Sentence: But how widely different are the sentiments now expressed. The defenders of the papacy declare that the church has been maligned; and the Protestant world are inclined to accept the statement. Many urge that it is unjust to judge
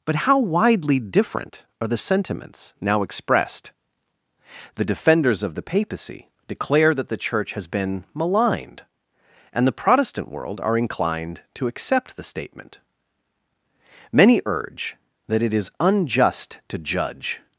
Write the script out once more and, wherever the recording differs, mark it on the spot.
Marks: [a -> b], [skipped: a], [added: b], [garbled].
But how widely different are the sentiments now expressed. The defenders of the papacy declare that the church has been maligned; and the Protestant world are inclined to accept the statement. Many urge that it is unjust to judge